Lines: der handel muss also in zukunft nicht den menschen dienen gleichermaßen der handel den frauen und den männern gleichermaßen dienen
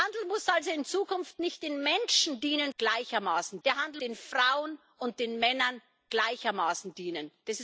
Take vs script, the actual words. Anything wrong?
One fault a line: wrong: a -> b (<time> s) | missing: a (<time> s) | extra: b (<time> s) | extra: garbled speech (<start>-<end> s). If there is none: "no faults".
no faults